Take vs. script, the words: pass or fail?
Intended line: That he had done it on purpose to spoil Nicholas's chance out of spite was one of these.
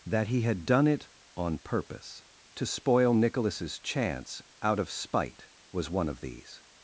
pass